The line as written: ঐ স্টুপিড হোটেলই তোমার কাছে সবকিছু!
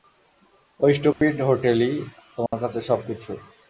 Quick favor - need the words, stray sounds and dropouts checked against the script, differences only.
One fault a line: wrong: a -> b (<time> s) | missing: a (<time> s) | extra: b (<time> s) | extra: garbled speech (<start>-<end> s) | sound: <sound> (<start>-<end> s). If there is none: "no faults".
sound: dropout (1.1-1.2 s)
sound: dropout (2.5-2.5 s)